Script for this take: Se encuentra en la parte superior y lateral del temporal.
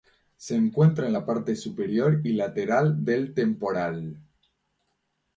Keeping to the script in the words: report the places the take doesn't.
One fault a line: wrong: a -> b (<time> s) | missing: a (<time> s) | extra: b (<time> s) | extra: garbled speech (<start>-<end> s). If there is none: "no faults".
no faults